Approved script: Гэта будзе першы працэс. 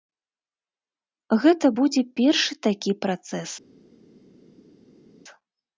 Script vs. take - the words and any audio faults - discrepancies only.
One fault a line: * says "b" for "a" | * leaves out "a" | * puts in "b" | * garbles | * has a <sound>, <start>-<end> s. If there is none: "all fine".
* puts in "такі"